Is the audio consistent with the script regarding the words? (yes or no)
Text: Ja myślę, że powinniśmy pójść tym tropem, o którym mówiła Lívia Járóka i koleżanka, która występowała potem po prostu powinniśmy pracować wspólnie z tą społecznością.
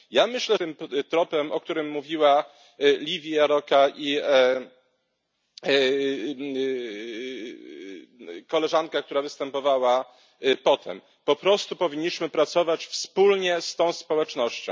no